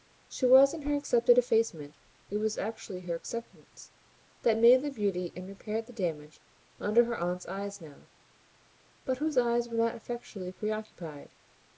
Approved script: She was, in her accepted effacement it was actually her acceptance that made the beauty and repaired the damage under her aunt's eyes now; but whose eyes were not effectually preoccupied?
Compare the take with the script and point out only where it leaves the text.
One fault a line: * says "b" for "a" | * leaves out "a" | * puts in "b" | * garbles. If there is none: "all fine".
all fine